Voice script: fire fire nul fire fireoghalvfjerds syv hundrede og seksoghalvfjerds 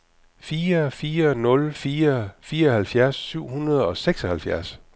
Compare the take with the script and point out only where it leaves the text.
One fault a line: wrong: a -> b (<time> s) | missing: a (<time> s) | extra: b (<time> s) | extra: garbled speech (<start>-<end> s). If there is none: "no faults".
no faults